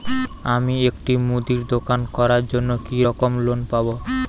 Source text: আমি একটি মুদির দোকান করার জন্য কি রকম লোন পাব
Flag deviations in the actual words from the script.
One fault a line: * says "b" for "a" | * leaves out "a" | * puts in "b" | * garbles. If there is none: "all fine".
all fine